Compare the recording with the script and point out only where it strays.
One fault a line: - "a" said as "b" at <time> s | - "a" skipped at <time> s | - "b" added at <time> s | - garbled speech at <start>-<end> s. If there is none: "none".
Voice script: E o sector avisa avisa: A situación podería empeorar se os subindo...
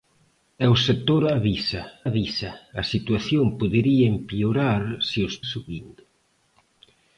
none